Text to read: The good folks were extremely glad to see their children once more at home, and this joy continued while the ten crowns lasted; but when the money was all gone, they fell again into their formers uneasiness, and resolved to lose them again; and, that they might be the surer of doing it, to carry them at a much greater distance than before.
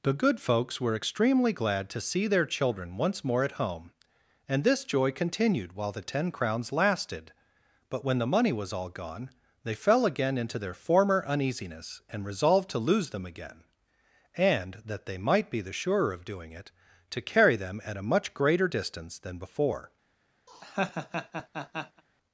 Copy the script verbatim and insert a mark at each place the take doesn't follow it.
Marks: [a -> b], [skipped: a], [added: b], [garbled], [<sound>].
The good folks were extremely glad to see their children once more at home, and this joy continued while the ten crowns lasted; but when the money was all gone, they fell again into their [formers -> former] uneasiness, and resolved to lose them again; and, that they might be the surer of doing it, to carry them at a much greater distance than before. [laugh]